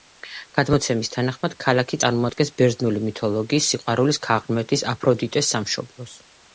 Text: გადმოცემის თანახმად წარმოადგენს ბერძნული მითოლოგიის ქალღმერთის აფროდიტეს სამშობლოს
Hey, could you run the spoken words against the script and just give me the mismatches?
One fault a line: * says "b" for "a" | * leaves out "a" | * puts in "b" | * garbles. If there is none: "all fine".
* puts in "ქალაქი"
* puts in "სიყვარულის"